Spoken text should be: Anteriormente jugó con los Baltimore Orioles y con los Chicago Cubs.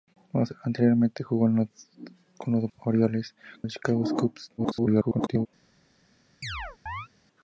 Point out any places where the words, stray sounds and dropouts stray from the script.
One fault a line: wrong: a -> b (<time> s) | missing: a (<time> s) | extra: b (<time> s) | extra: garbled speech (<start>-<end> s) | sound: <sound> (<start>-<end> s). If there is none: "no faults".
missing: Baltimore (2.7 s)
missing: con (3.6 s)
extra: garbled speech (4.6-5.5 s)
sound: chirp (6.4-7.1 s)